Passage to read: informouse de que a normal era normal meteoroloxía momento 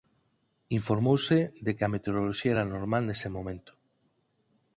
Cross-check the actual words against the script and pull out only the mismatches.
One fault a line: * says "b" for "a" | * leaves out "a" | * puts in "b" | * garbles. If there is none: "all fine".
* says "meteoroloxía" for "normal"
* says "nese" for "meteoroloxía"